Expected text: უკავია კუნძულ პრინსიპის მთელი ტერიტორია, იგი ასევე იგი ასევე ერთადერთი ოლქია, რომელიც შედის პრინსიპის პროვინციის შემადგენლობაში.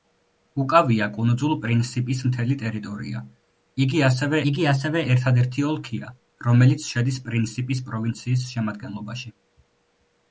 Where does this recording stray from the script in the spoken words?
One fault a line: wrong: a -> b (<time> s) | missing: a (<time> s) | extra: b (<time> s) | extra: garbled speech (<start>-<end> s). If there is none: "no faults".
no faults